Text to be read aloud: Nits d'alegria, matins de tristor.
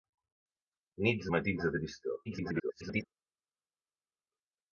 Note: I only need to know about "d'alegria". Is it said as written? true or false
false